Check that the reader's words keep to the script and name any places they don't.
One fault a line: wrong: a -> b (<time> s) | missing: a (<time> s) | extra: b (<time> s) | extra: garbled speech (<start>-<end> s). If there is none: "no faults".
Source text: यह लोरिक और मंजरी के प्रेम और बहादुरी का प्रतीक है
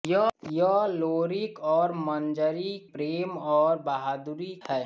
missing: के (2.8 s)
missing: का प्रतीक (4.5 s)